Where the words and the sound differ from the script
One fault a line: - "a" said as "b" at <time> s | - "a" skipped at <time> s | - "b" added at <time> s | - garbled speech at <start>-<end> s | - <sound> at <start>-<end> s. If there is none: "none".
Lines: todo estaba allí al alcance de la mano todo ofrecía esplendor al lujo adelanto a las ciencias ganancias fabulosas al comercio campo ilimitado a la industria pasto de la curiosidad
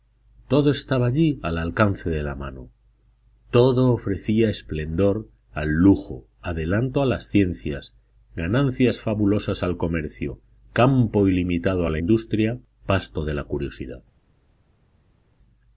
none